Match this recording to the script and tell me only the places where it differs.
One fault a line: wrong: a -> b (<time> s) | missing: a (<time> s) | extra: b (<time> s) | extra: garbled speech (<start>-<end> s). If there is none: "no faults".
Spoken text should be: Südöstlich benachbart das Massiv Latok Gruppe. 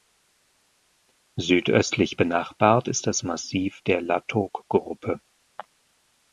extra: ist (2.9 s)
extra: der (3.8 s)